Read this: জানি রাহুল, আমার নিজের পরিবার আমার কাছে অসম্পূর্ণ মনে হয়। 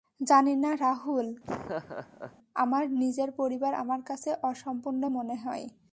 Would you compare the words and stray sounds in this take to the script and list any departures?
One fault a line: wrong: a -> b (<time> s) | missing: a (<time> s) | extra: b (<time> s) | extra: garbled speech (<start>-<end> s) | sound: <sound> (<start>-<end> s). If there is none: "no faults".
extra: না (0.6 s)
sound: laugh (1.4-2.4 s)